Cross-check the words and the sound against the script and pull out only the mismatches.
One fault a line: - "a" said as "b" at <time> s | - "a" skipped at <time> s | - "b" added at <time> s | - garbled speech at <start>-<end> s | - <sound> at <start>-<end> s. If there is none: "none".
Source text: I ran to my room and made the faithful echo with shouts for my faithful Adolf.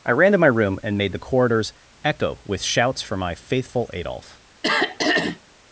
- "faithful" said as "corridors" at 1.2 s
- throat clearing at 4.6-5.4 s